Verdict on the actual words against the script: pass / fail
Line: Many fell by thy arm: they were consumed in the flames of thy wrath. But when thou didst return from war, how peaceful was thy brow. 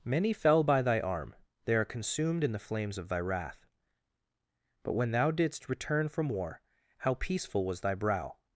fail